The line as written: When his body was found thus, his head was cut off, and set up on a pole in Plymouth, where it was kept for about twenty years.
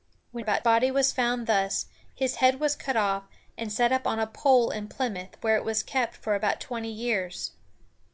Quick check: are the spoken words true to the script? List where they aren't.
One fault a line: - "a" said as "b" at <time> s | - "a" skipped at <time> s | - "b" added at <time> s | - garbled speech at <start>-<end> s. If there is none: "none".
- "his" said as "about" at 0.4 s